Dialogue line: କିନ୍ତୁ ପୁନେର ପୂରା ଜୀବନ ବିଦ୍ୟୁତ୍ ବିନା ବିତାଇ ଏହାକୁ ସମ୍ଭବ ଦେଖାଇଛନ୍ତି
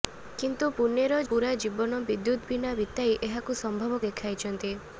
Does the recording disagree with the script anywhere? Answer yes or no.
no